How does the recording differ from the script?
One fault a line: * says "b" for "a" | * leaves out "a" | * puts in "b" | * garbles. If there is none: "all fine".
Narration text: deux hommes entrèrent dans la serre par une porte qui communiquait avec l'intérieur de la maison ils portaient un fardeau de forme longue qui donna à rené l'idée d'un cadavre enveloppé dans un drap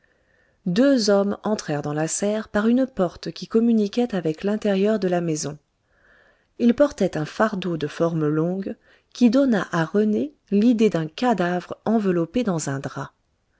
all fine